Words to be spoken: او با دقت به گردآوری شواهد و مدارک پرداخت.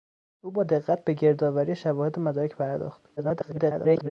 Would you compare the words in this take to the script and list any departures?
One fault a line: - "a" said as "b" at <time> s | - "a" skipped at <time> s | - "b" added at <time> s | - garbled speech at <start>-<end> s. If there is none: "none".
- garbled speech at 3.2-4.1 s